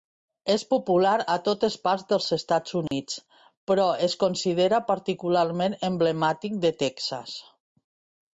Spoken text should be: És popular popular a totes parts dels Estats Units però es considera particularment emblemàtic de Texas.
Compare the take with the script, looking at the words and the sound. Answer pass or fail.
fail